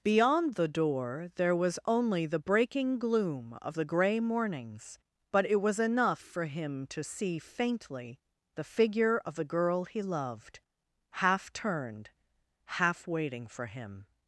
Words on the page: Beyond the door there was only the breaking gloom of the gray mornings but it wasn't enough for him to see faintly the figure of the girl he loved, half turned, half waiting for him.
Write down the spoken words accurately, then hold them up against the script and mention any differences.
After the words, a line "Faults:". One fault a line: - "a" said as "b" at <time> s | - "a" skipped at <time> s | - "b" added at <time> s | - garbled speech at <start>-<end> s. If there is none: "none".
Beyond the door there was only the breaking gloom of the gray mornings but it was enough for him to see faintly the figure of the girl he loved, half turned, half waiting for him.
Faults:
- "wasn't" said as "was" at 5.6 s